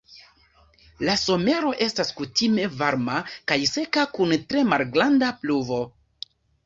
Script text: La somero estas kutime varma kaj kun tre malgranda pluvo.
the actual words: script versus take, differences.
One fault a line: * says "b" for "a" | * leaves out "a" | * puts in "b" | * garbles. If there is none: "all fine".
* puts in "seka"